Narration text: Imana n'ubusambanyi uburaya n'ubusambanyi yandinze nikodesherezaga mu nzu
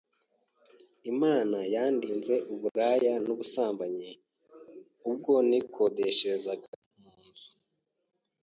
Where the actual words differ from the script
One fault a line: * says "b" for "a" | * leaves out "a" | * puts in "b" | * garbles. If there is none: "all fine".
* says "yandinze" for "n'ubusambanyi"
* says "ubwo" for "yandinze"